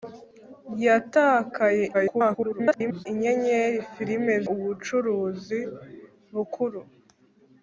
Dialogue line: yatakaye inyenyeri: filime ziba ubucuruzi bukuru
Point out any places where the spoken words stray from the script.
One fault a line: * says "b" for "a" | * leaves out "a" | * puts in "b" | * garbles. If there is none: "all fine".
* garbles
* leaves out "ziba"